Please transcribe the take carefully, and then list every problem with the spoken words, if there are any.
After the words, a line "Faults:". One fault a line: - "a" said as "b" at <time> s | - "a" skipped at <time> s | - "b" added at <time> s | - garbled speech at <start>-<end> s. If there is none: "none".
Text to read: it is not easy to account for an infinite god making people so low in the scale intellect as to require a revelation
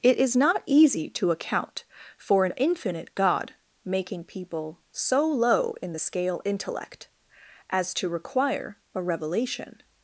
it is not easy to account for an infinite god making people so low in the scale intellect as to require a revelation
Faults:
none